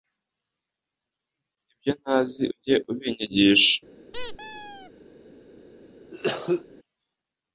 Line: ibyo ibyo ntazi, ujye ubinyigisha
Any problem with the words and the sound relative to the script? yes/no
yes